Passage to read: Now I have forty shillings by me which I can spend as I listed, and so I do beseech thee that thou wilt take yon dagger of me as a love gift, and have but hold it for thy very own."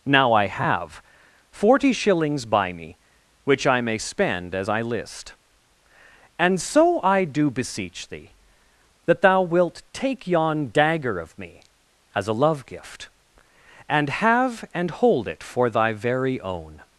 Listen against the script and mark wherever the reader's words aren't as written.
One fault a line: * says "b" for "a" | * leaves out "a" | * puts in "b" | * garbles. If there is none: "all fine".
* says "may" for "can"
* says "list" for "listed"
* says "and" for "but"